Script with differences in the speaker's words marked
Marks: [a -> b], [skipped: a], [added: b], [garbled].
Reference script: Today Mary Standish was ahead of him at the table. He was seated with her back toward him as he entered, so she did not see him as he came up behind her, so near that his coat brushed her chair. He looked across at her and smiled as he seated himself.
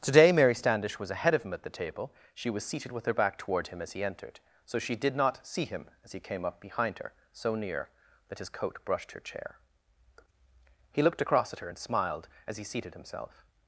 Today Mary Standish was ahead of him at the table. [He -> She] was seated with her back toward him as he entered, so she did not see him as he came up behind her, so near that his coat brushed her chair. He looked across at her and smiled as he seated himself.